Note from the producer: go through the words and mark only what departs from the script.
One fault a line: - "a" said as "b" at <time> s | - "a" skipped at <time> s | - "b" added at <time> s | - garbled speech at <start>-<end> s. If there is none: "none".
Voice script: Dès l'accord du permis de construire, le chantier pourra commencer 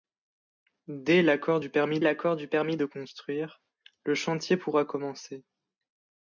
- "l'accord du permis" added at 2.0 s